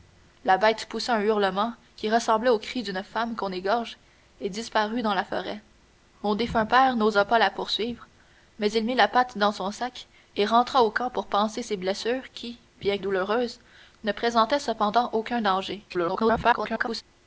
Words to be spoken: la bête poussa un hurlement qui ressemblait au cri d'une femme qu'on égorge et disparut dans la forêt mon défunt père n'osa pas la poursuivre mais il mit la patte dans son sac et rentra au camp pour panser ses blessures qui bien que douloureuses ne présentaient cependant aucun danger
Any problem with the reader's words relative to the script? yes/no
yes